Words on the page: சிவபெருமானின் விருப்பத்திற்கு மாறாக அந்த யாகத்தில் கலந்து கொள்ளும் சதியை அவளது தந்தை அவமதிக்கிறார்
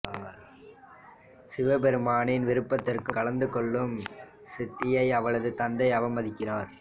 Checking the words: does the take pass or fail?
fail